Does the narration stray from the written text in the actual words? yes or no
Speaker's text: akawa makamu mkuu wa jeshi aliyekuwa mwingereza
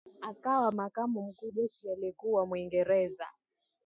yes